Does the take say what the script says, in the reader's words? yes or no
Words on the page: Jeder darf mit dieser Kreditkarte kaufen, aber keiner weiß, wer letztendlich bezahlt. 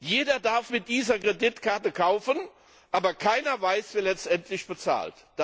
yes